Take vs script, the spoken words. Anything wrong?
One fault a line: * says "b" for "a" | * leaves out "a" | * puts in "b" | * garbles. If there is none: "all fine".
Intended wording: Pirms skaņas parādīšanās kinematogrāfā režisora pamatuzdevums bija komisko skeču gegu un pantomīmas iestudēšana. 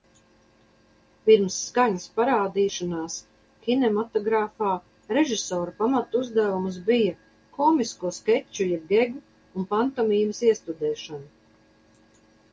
* puts in "jeb"